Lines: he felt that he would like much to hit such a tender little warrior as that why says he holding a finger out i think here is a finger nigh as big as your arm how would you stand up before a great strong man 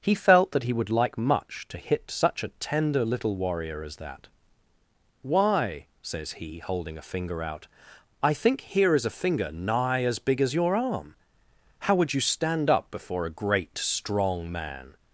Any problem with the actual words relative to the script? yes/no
no